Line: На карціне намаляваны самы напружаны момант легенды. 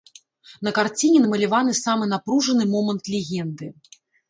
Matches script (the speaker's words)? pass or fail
pass